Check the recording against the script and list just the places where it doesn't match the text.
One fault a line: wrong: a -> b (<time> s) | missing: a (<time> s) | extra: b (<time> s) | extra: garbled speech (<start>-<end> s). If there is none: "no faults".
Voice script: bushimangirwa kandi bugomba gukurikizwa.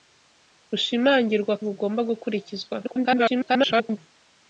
missing: kandi (1.5 s)
extra: garbled speech (2.8-4.0 s)